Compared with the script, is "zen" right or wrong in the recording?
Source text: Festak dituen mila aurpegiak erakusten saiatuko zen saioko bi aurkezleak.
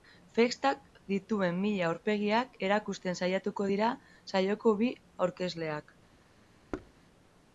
wrong